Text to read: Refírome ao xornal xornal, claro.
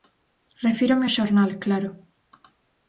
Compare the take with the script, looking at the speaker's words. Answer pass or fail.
fail